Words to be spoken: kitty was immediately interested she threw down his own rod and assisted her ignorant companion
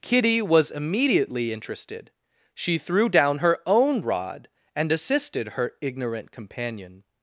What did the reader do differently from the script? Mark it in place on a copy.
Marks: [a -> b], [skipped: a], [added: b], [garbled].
kitty was immediately interested she threw down [his -> her] own rod and assisted her ignorant companion